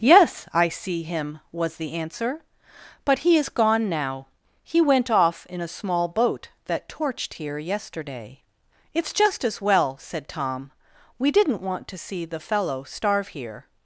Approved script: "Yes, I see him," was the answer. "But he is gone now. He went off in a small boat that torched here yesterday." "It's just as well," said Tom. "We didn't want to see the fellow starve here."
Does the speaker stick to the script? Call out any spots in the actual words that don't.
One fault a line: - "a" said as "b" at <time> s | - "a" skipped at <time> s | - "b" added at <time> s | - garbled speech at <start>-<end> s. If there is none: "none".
none